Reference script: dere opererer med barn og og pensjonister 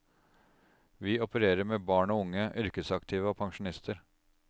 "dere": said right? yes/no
no